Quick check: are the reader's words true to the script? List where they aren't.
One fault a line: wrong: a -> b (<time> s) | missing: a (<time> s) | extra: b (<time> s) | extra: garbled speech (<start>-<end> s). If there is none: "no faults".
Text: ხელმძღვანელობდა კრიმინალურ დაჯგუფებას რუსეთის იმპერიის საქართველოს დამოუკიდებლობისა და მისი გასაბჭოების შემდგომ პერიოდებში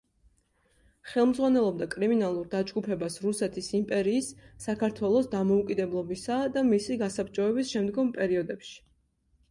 no faults